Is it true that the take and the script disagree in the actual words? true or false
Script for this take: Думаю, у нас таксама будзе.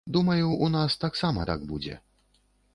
true